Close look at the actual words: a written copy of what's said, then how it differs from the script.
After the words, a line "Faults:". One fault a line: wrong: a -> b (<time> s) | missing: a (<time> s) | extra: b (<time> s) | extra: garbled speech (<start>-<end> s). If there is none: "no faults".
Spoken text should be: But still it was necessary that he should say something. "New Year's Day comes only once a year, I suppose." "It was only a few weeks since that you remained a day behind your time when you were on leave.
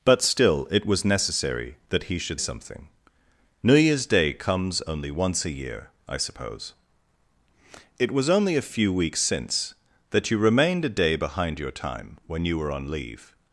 But still it was necessary that he should something. "New Year's Day comes only once a year, I suppose." "It was only a few weeks since that you remained a day behind your time when you were on leave.
Faults:
missing: say (2.4 s)